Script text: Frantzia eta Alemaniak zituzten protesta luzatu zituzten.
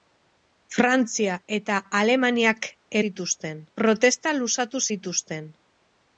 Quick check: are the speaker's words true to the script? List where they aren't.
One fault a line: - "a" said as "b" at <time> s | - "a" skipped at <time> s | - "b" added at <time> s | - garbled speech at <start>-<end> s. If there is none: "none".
none